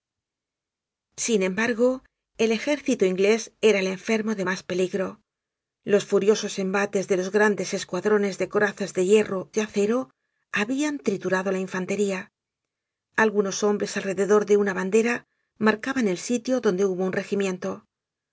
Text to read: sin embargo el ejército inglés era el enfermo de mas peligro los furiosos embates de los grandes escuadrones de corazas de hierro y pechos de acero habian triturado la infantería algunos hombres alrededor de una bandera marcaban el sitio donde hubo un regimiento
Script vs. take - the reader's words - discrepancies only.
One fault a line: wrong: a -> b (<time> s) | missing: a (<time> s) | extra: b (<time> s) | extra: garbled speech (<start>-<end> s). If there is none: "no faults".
missing: y pechos (9.5 s)